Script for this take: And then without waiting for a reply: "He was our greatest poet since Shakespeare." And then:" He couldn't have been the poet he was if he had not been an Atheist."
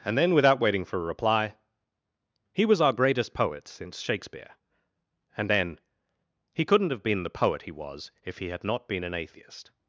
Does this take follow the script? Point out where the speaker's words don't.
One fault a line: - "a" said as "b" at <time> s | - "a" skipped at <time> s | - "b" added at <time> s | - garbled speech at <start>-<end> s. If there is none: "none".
none